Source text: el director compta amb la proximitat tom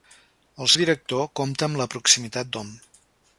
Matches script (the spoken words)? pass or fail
pass